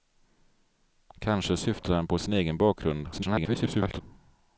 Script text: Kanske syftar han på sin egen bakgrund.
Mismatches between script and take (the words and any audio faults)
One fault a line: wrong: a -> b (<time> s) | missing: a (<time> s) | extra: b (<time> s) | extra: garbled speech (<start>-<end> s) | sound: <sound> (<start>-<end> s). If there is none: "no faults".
extra: garbled speech (3.1-4.0 s)